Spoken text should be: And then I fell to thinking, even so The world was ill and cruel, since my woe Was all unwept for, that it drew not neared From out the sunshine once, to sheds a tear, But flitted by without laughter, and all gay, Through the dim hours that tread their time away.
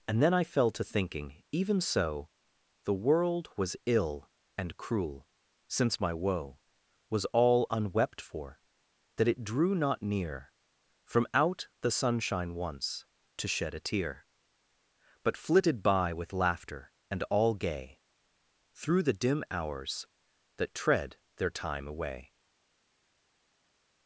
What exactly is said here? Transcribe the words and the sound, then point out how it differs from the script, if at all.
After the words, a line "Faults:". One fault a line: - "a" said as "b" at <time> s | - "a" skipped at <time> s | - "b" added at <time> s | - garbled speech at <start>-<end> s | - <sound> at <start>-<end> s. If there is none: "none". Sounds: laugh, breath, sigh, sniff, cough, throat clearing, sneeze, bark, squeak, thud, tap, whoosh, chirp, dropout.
And then I fell to thinking, even so The world was ill and cruel, since my woe Was all unwept for, that it drew not near From out the sunshine once, to shed a tear, But flitted by with laughter, and all gay, Through the dim hours that tread their time away.
Faults:
- "neared" said as "near" at 10.0 s
- "sheds" said as "shed" at 13.5 s
- "without" said as "with" at 16.1 s